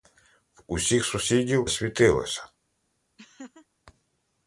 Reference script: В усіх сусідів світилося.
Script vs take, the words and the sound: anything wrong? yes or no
yes